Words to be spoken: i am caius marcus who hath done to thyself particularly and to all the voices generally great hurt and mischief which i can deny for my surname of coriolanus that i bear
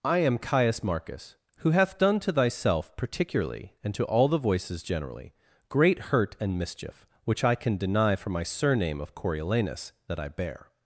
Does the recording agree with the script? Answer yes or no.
yes